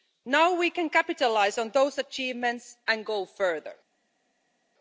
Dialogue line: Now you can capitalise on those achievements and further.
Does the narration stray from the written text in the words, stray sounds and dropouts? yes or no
yes